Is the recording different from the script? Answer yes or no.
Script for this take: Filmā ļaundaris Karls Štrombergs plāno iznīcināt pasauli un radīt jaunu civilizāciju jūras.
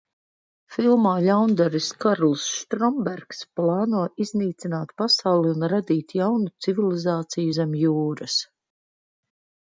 yes